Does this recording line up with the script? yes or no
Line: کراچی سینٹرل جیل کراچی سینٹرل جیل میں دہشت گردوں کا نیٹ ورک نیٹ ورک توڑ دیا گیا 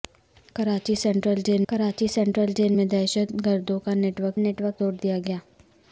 yes